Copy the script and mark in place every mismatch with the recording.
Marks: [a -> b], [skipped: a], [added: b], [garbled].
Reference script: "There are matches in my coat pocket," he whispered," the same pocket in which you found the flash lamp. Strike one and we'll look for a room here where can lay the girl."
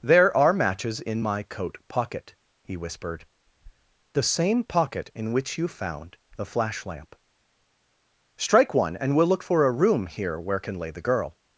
"There are matches in my coat pocket," he whispered," the same pocket in which you found the flash lamp. Strike one and we'll look for a room here where can lay the girl."